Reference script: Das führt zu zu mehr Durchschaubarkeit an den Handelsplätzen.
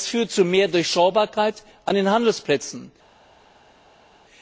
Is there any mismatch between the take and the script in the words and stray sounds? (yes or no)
yes